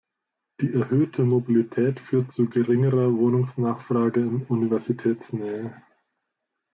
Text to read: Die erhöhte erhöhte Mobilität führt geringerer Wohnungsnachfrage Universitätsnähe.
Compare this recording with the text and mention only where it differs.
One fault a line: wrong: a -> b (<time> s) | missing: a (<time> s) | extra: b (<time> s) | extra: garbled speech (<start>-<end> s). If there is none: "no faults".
missing: erhöhte (1.2 s)
extra: zu (2.3 s)
extra: in (4.2 s)